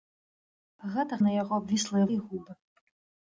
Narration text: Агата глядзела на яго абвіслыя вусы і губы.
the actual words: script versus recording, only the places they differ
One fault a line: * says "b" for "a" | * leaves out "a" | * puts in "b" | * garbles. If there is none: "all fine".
* leaves out "глядзела"
* leaves out "вусы"